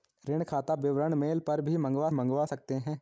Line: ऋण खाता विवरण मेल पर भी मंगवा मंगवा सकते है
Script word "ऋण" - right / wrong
right